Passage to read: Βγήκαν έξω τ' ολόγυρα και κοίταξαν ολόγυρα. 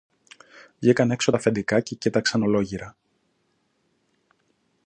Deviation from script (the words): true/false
true